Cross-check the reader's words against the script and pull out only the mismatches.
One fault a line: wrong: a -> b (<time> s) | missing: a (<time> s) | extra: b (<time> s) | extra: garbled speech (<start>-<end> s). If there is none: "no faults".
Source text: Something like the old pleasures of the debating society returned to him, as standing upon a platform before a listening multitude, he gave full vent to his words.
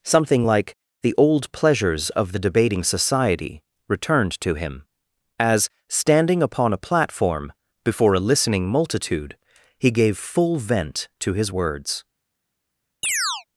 no faults